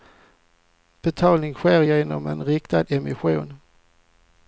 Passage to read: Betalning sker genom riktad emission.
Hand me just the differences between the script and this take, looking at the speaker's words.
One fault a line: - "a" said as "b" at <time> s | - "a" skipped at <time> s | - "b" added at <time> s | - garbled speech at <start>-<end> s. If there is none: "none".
- "en" added at 2.3 s